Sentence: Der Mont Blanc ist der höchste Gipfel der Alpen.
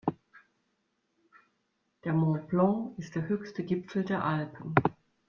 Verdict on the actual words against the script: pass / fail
pass